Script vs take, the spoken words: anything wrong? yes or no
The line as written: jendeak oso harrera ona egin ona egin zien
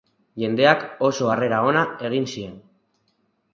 yes